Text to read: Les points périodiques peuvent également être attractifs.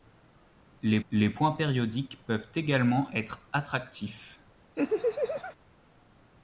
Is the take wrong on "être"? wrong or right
right